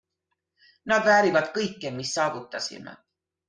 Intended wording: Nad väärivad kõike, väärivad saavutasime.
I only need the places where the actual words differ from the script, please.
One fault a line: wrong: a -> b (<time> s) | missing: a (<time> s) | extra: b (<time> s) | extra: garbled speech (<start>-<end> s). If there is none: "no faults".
wrong: väärivad -> mis (2.0 s)